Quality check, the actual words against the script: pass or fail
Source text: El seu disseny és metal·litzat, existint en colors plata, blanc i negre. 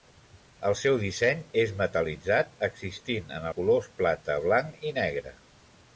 pass